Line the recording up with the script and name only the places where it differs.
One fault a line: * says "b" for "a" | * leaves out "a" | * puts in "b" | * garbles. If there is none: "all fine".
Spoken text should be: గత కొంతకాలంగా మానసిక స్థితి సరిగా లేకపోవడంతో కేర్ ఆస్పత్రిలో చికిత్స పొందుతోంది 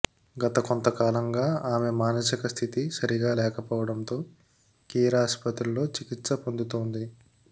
* puts in "ఆమె"